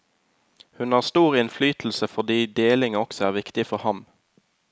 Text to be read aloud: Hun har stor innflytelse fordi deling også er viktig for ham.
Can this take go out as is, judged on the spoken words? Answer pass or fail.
pass